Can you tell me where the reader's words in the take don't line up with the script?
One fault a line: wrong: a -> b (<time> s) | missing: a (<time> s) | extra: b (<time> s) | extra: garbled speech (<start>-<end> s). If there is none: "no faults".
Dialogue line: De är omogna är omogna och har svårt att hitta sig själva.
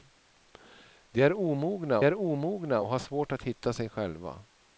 no faults